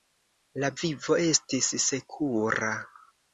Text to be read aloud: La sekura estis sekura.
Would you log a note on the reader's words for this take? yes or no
yes